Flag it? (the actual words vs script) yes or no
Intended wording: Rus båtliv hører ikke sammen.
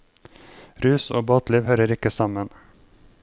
yes